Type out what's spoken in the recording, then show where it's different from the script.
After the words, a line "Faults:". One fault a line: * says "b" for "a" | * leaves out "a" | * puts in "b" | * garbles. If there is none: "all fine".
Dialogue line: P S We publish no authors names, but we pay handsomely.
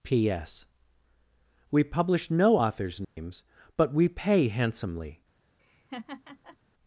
P S We publish no authors names, but we pay handsomely.
Faults:
all fine